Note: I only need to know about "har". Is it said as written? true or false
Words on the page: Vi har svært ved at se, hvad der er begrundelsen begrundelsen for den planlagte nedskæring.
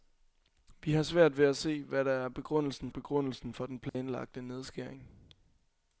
true